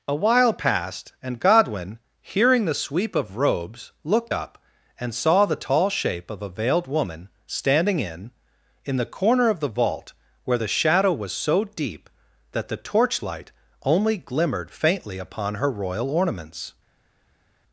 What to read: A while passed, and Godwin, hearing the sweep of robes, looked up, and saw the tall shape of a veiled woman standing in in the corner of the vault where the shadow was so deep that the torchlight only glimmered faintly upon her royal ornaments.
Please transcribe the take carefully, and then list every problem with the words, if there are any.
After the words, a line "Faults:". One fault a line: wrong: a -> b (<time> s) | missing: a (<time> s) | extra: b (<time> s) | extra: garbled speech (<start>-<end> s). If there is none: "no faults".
A while passed, and Godwin, hearing the sweep of robes, looked up, and saw the tall shape of a veiled woman standing in in the corner of the vault where the shadow was so deep that the torchlight only glimmered faintly upon her royal ornaments.
Faults:
no faults